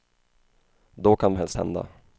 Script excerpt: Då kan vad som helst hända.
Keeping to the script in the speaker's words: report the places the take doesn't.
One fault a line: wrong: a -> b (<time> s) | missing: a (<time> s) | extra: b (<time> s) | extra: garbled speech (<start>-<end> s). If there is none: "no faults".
missing: vad som (1.4 s)